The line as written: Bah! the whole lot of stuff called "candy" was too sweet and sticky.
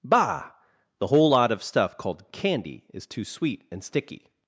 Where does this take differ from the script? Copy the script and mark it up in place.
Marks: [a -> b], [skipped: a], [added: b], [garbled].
Bah! the whole lot of stuff called "candy" [was -> is] too sweet and sticky.